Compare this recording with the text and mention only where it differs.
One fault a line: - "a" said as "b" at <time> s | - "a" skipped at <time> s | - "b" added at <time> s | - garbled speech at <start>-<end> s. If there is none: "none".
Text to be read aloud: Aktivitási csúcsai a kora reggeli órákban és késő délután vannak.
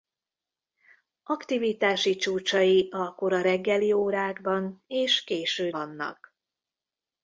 - "délután" skipped at 5.7 s